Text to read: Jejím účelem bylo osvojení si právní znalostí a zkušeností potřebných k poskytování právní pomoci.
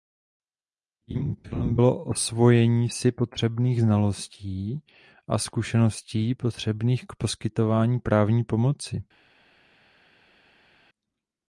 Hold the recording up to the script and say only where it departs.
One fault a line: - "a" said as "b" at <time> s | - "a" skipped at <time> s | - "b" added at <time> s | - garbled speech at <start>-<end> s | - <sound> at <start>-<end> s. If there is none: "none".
- "právní" said as "potřebných" at 3.1 s